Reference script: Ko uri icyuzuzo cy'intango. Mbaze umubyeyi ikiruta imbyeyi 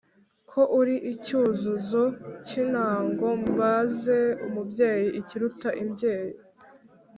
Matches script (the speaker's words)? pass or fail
pass